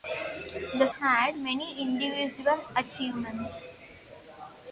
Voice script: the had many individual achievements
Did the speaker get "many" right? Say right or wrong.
right